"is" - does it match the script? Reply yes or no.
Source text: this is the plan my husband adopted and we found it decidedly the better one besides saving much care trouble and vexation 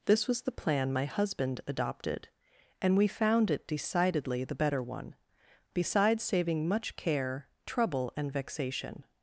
no